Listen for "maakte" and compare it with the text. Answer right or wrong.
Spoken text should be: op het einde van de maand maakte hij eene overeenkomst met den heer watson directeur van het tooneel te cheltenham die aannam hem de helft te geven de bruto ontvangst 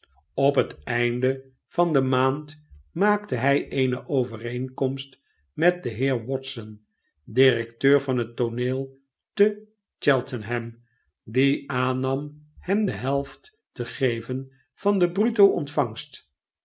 right